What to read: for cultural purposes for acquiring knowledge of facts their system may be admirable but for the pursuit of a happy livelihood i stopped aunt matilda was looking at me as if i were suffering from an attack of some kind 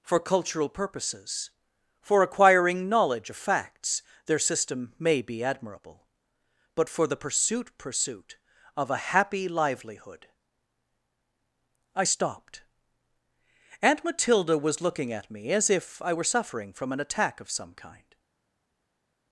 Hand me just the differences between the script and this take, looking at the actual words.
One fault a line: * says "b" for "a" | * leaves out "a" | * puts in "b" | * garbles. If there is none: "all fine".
* puts in "pursuit"